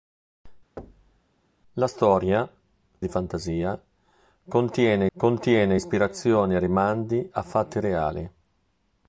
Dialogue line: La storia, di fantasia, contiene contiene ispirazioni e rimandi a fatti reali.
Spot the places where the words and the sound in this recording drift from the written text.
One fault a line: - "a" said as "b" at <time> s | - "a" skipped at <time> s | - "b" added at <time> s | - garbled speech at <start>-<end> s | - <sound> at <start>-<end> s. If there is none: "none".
- thud at 0.8-1.2 s